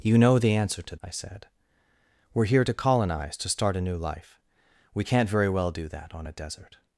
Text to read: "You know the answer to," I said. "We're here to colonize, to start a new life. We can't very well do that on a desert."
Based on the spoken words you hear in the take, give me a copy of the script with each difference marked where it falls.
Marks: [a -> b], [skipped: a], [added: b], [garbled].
"You know the answer to," I said. "We're here to colonize, to start a new life. We can't very well do that on a desert."